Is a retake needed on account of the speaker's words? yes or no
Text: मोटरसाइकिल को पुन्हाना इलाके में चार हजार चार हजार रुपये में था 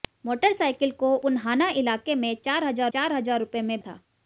no